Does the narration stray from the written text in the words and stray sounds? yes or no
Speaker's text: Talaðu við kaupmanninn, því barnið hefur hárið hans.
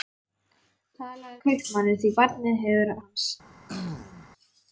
yes